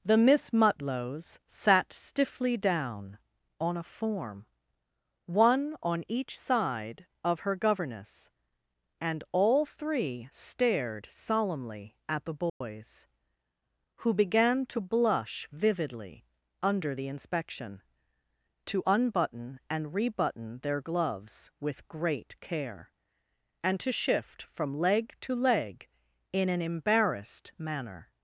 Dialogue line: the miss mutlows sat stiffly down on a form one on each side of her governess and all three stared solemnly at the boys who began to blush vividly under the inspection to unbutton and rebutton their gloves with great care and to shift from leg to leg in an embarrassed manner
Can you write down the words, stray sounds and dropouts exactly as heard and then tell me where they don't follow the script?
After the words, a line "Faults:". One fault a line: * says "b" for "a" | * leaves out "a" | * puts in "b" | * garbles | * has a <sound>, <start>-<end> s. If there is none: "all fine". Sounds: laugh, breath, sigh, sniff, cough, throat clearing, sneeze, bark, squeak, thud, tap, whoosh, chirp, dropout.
the miss mutlows sat stiffly down on a form one on each side of her governess and all three stared solemnly at the boys who began to blush vividly under the inspection to unbutton and rebutton their gloves with great care and to shift from leg to leg in an embarrassed manner
Faults:
* has a dropout, 12.5-12.6 s